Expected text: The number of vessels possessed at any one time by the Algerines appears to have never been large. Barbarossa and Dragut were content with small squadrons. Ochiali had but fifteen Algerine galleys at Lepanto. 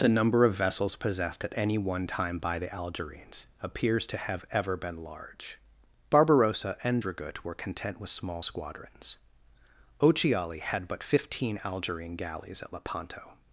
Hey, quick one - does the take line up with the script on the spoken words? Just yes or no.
no